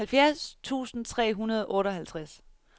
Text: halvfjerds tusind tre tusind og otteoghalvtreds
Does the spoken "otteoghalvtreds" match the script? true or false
true